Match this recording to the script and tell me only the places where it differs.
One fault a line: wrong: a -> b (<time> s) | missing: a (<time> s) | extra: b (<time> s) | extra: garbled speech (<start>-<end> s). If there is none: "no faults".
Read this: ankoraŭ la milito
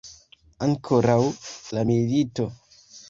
no faults